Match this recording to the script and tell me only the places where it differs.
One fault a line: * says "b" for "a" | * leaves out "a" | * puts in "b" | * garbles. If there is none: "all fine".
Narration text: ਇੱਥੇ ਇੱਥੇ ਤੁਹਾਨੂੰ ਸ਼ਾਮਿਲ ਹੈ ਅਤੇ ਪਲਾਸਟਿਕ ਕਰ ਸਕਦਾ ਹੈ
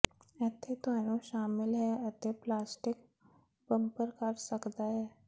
* leaves out "ਇੱਥੇ"
* puts in "ਬੰਪਰ"